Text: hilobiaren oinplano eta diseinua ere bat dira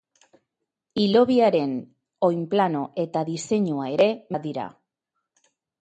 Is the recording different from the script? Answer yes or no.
no